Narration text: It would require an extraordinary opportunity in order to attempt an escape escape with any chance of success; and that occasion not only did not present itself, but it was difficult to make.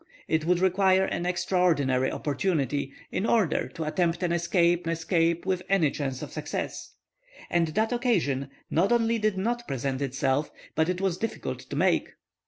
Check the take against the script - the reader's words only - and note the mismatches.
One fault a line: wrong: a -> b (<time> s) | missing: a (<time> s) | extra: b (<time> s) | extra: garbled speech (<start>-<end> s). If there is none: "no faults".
no faults